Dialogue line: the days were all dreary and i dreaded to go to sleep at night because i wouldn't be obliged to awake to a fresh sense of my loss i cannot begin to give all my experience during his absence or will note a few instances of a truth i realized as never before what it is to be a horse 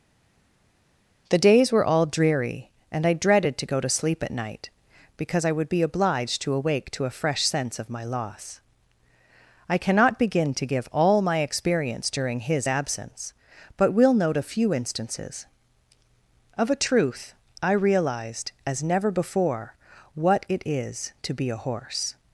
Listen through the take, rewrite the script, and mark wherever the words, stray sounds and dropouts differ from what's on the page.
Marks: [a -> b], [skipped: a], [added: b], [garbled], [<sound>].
the days were all dreary and i dreaded to go to sleep at night because i [wouldn't -> would] be obliged to awake to a fresh sense of my loss i cannot begin to give all my experience during his absence [or -> but] will note a few instances of a truth i realized as never before what it is to be a horse